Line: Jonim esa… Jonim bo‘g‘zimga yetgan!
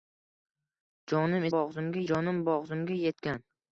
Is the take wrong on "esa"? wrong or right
wrong